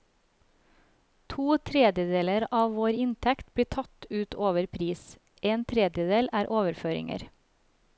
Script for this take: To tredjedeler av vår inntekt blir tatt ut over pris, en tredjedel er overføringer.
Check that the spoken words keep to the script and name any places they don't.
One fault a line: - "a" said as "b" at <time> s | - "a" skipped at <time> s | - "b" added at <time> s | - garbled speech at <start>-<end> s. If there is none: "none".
none